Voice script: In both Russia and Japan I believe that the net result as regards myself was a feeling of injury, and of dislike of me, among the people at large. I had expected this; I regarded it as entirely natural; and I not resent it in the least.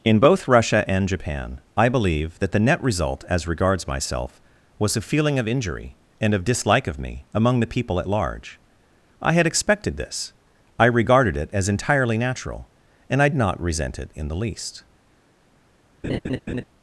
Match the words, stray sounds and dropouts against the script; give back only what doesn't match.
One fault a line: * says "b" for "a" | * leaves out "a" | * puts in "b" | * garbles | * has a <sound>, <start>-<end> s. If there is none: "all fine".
* has a laugh, 16.0-16.6 s